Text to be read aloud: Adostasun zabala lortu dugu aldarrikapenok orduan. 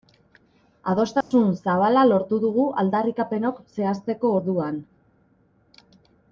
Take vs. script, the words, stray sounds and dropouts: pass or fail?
fail